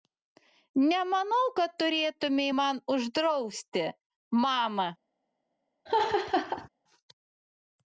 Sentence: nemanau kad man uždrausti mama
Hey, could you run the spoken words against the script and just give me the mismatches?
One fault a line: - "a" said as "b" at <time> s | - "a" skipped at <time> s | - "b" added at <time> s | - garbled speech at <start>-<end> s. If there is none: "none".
- "turėtumei" added at 1.8 s